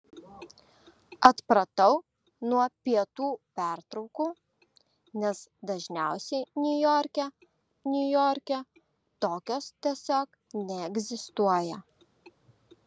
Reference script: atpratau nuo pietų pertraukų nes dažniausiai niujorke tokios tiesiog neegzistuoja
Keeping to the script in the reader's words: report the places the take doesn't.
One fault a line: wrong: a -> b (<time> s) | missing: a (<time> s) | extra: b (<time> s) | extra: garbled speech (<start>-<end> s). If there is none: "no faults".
extra: niujorke (7.9 s)